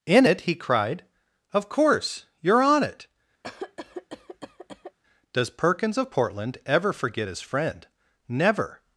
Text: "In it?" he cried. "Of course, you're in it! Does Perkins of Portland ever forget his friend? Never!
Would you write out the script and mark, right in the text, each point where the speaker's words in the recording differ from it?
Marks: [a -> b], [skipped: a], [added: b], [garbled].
"In it?" he cried. "Of course, you're [in -> on] it! Does Perkins of Portland ever forget his friend? Never!